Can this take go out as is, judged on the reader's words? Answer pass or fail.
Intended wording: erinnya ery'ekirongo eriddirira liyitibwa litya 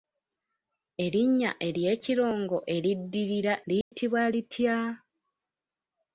pass